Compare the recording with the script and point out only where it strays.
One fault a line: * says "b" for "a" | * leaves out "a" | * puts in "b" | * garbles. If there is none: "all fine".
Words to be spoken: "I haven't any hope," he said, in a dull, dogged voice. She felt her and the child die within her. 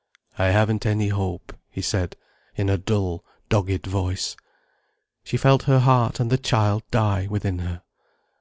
* puts in "heart"